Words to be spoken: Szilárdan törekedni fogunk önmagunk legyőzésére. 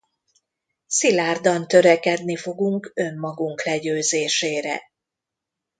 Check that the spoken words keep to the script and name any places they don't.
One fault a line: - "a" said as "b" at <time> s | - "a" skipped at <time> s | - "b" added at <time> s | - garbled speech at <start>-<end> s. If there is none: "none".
none